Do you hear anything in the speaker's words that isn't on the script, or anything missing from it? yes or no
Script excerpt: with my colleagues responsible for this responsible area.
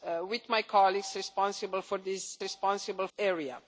no